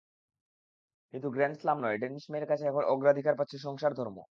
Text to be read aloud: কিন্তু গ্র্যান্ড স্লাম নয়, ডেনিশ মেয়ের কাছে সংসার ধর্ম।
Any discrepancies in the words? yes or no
yes